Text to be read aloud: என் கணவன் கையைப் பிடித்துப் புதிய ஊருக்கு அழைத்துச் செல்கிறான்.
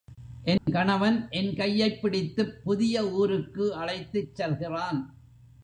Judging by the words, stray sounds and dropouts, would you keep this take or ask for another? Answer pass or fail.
fail